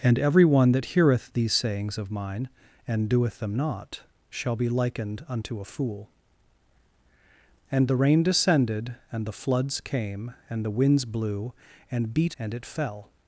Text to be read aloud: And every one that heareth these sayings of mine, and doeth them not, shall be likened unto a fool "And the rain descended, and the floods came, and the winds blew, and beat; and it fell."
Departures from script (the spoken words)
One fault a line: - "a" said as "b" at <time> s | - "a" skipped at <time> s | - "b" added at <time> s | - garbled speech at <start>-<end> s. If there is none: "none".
none